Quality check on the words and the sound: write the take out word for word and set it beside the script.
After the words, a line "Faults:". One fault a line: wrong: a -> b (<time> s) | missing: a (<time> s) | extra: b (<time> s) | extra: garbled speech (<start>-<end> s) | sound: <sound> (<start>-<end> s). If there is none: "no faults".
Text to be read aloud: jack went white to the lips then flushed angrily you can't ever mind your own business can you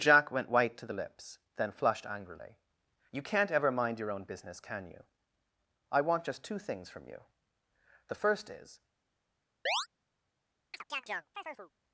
jack went white to the lips then flushed angrily you can't ever mind your own business can you i want just two things from you the first is
Faults:
extra: i want just two things from you the first is (5.9 s)
sound: chirp (9.7-9.9 s)
sound: chirp (10.7-11.7 s)